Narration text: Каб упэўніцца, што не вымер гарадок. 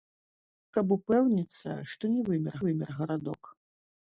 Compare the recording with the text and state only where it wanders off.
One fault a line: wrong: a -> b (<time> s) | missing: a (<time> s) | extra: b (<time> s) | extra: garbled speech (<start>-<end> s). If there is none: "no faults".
extra: вымер (2.7 s)